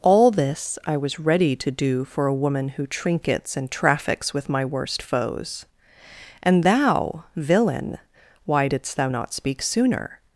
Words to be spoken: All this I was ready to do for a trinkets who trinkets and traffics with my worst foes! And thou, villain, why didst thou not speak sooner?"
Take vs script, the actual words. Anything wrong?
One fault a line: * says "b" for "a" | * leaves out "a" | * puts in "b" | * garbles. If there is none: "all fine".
* says "woman" for "trinkets"